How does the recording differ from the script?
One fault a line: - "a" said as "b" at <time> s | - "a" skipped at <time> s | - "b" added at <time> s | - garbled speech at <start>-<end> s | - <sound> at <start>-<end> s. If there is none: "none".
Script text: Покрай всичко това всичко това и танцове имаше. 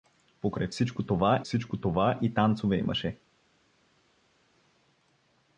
none